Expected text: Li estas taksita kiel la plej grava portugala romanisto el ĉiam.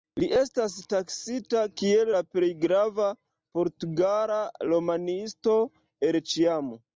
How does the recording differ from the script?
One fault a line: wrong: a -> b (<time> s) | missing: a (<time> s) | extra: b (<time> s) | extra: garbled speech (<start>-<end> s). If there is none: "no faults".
no faults